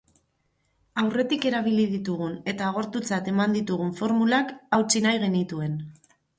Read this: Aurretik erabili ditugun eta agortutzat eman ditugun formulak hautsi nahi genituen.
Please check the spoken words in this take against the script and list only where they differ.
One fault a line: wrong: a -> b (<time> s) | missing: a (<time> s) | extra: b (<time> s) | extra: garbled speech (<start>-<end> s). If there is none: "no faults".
no faults